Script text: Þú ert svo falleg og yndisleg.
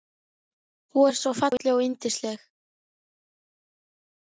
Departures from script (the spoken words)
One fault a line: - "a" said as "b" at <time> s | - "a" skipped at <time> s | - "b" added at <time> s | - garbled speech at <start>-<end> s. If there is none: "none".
none